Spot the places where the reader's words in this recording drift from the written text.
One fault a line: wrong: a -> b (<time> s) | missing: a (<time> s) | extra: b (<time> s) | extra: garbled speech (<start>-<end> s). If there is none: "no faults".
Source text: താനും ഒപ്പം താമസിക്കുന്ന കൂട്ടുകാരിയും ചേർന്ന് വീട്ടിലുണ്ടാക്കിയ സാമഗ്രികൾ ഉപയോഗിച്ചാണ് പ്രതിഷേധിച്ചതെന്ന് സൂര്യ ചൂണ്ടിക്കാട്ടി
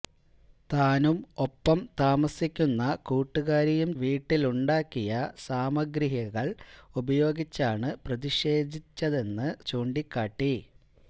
missing: ചേർന്ന് (3.9 s)
missing: സൂര്യ (9.5 s)